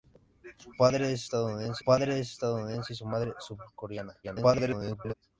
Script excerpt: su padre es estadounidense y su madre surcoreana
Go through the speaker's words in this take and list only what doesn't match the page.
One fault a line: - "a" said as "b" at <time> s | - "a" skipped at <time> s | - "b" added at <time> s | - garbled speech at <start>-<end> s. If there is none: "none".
- "padre es estadounidense" added at 1.8 s
- garbled speech at 4.2-5.1 s